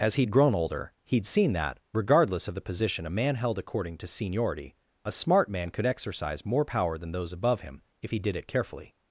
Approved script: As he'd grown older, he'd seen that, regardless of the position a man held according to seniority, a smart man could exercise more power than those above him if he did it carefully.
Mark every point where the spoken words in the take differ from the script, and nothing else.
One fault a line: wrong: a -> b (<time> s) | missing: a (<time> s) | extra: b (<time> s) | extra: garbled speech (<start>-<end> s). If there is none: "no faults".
no faults